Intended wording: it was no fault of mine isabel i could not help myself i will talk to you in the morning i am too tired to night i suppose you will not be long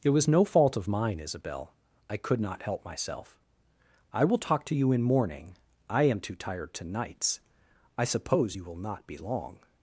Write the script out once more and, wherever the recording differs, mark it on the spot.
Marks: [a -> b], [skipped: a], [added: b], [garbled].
it was no fault of mine isabel i could not help myself i will talk to you in [skipped: the] morning i am too tired to [night -> nights] i suppose you will not be long